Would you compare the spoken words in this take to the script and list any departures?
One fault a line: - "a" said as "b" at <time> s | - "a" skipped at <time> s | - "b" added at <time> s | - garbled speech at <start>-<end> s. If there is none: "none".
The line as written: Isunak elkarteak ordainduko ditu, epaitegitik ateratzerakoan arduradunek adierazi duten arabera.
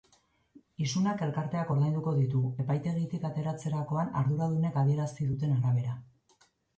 none